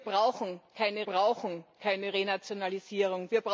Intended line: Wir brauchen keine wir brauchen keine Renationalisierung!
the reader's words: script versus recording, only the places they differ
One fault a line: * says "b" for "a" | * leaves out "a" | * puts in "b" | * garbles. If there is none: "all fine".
all fine